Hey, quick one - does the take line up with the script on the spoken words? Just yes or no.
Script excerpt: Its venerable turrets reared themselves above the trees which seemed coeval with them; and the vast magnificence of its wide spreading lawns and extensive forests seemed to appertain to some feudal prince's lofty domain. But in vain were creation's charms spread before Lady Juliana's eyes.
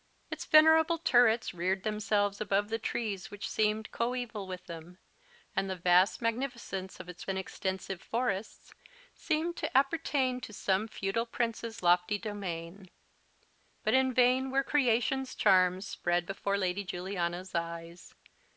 no